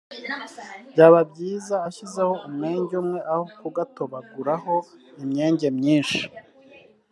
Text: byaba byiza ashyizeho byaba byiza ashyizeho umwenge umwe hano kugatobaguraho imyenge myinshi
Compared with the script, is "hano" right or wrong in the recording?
wrong